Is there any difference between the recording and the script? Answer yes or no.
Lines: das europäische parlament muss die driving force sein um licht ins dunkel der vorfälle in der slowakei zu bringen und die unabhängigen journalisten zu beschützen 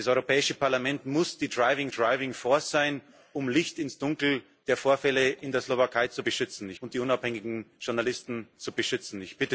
yes